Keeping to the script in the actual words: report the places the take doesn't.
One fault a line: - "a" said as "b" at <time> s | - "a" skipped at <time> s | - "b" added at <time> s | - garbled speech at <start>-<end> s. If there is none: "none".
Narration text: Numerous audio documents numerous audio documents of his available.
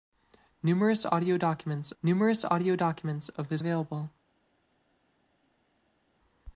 none